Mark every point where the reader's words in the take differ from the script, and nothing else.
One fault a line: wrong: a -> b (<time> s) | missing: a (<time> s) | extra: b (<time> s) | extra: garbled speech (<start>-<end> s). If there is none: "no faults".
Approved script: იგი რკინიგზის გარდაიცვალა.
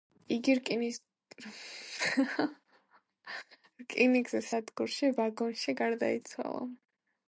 extra: სადგურში ვაგონში (4.5 s)